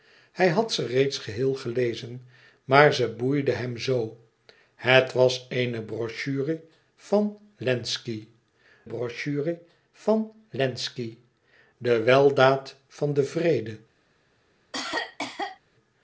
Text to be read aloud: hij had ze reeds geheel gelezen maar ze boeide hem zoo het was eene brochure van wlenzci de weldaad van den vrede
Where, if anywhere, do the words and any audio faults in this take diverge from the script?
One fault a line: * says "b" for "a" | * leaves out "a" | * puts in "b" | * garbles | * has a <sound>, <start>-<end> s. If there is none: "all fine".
* puts in "brochure van wlenzci"
* has a cough, 14.7-15.6 s